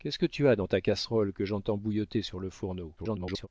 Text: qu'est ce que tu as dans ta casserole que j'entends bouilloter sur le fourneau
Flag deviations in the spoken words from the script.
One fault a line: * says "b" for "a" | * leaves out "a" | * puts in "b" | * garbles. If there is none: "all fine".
* garbles